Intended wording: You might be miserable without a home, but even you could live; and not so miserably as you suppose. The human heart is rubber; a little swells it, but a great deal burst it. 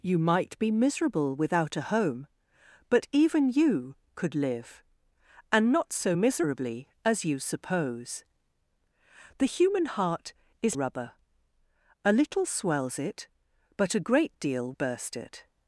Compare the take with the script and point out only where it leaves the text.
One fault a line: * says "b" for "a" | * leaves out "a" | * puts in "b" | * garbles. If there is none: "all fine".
all fine